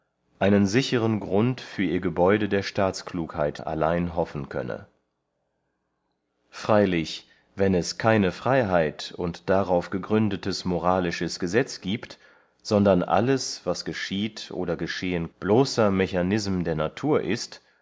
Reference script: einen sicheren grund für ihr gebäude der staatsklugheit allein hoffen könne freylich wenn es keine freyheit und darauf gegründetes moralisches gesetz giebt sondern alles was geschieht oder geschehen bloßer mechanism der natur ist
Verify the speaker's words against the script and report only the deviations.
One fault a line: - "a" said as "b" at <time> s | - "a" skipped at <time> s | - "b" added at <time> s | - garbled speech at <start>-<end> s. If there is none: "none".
none